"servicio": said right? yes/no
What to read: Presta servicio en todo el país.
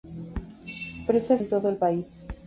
no